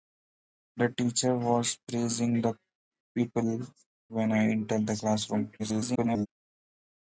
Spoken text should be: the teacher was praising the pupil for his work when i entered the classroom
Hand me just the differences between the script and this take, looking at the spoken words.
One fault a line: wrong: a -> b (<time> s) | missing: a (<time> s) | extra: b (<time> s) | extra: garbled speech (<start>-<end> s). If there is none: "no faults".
missing: for his work (3.7 s)
extra: garbled speech (5.6-6.3 s)